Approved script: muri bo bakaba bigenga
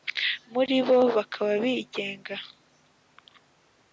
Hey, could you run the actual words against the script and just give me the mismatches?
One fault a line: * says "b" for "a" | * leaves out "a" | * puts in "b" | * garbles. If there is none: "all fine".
all fine